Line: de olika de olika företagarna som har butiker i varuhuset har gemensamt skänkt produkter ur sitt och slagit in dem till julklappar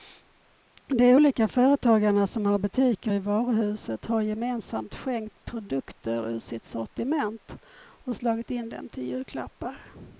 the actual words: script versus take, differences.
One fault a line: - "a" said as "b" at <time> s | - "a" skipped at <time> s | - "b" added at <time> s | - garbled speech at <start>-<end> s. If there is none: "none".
- "de olika" skipped at 1.5 s
- "sortiment" added at 6.7 s